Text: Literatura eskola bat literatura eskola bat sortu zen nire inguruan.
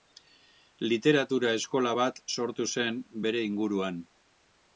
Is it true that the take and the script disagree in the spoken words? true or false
true